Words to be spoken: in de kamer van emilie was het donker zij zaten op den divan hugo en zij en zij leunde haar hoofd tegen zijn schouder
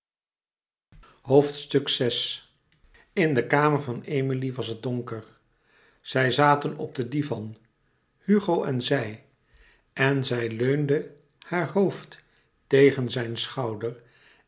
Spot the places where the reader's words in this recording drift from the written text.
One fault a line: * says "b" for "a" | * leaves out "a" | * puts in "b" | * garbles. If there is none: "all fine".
all fine